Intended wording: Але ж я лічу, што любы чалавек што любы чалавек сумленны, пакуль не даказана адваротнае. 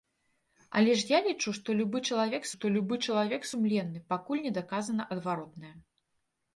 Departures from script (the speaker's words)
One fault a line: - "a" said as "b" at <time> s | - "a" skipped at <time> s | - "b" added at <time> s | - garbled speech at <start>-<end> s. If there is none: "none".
none